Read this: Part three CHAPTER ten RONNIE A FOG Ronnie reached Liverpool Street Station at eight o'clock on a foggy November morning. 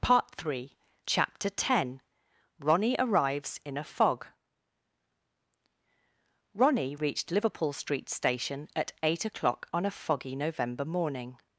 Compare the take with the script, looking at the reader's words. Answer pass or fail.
fail